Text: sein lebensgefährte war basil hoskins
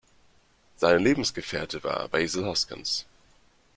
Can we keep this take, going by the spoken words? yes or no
yes